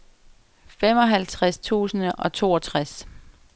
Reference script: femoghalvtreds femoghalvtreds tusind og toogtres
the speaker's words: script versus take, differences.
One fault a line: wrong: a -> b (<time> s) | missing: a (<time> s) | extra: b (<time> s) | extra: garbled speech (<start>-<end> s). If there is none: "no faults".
missing: femoghalvtreds (1.6 s)